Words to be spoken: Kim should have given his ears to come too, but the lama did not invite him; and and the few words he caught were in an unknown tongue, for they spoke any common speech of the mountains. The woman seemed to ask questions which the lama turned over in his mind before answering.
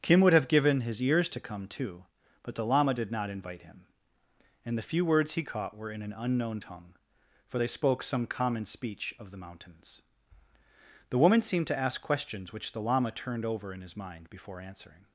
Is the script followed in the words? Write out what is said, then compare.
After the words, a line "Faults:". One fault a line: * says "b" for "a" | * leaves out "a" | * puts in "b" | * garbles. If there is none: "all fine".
Kim would have given his ears to come too, but the lama did not invite him; and the few words he caught were in an unknown tongue, for they spoke some common speech of the mountains. The woman seemed to ask questions which the lama turned over in his mind before answering.
Faults:
* says "would" for "should"
* leaves out "and"
* says "some" for "any"